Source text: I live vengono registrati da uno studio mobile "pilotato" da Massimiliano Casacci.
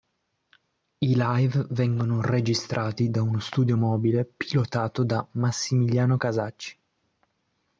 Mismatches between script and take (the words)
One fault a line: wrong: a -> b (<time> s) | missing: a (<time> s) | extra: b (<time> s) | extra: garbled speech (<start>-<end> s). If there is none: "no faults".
no faults